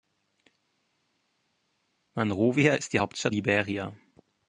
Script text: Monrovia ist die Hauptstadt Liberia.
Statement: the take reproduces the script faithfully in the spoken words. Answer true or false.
true